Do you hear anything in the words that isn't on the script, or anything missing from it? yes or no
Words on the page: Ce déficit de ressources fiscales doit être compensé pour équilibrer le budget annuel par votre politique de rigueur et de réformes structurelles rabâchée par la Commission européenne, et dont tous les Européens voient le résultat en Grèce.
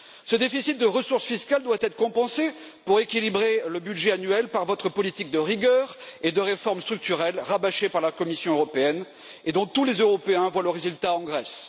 no